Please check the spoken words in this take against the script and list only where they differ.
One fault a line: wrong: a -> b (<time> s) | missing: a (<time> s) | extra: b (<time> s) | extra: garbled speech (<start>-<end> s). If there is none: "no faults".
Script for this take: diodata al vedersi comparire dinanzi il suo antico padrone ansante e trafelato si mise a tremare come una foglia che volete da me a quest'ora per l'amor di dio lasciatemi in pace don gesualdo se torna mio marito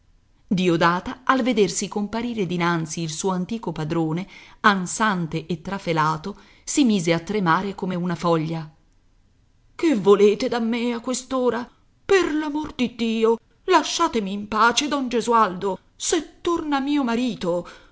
no faults